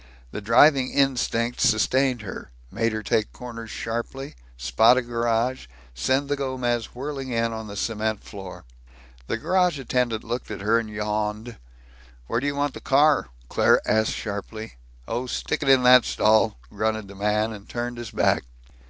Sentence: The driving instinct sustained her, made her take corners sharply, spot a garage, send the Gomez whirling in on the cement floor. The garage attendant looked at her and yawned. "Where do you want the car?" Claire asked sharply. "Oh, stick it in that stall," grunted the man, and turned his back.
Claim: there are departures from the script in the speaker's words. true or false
false